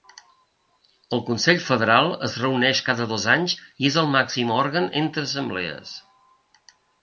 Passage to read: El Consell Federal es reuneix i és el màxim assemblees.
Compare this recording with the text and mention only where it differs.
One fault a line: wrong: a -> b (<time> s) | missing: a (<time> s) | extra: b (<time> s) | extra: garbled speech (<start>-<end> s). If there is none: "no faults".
extra: cada dos anys (2.9 s)
extra: òrgan entre (4.6 s)